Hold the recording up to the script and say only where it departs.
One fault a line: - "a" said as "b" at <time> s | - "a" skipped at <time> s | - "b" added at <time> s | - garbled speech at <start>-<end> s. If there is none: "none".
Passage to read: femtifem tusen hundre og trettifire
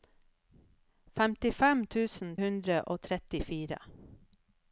none